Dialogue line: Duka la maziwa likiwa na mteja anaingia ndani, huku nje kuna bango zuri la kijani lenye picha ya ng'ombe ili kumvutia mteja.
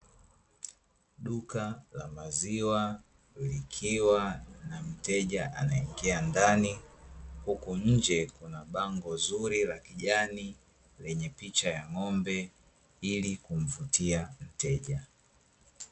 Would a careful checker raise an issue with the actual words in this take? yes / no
no